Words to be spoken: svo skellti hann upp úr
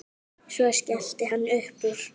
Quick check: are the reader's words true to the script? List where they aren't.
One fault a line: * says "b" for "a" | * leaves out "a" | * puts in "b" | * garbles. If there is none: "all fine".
all fine